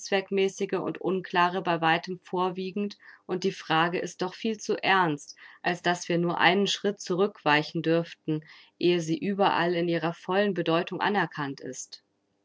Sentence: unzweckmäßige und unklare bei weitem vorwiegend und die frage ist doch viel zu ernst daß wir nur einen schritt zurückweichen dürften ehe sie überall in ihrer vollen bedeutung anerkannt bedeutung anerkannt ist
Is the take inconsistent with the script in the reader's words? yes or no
yes